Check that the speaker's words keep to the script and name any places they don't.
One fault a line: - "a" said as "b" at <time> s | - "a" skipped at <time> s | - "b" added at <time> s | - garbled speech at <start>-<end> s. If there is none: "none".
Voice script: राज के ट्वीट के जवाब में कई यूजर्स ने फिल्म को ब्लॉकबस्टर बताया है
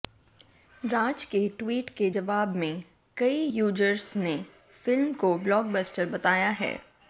none